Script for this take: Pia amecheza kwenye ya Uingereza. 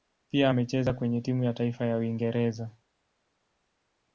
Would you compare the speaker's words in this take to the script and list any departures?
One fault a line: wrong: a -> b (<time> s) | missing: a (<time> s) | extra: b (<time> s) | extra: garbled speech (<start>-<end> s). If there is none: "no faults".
extra: timu ya taifa (1.2 s)